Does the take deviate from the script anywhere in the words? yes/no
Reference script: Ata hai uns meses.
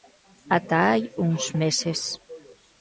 no